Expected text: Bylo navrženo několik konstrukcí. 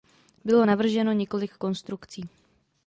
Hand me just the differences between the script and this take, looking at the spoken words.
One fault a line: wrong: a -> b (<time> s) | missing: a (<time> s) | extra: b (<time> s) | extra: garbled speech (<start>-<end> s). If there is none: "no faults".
no faults